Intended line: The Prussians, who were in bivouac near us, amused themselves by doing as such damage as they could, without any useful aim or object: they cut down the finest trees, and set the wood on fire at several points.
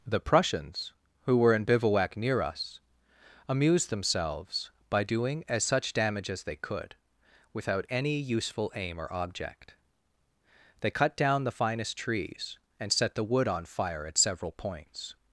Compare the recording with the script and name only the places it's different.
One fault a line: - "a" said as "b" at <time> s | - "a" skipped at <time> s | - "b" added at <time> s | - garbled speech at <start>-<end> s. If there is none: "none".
none